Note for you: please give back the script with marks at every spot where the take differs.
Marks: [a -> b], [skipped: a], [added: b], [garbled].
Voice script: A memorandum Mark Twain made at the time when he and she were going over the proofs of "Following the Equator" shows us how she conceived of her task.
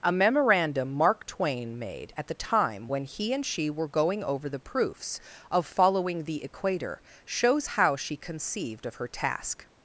A memorandum Mark Twain made at the time when he and she were going over the proofs of "Following the Equator" shows [skipped: us] how she conceived of her task.